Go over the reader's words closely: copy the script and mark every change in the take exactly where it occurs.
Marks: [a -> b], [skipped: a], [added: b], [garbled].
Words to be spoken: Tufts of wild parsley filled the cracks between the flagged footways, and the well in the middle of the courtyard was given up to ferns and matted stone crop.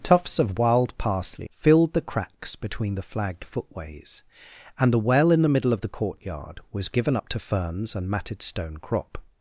Tufts of wild parsley filled the cracks between the flagged footways, and the well in the middle of the courtyard was given up to ferns and matted stone crop.